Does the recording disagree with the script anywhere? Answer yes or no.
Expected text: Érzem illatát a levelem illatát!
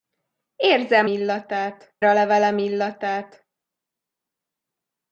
no